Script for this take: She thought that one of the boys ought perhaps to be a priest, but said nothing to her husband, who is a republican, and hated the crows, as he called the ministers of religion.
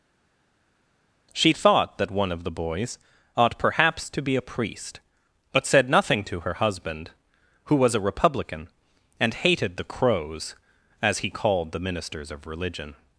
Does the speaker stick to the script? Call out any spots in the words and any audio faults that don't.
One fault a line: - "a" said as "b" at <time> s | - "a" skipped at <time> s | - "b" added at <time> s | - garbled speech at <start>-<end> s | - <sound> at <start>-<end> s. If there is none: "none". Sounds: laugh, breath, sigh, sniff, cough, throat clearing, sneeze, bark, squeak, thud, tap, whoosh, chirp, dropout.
- "is" said as "was" at 7.8 s